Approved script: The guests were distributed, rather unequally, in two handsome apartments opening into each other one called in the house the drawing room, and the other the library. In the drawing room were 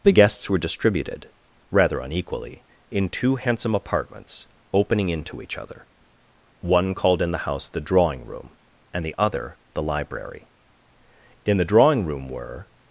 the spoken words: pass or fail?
pass